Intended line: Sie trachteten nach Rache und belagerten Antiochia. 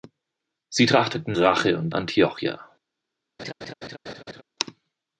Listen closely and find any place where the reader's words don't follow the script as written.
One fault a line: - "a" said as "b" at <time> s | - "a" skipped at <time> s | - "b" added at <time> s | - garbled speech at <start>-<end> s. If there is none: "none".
- "nach" skipped at 1.4 s
- "belagerten" skipped at 1.9 s